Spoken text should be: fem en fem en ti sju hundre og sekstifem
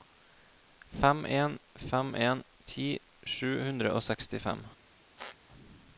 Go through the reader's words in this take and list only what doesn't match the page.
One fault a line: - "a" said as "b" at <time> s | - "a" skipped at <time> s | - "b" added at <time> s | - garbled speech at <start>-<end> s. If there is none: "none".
none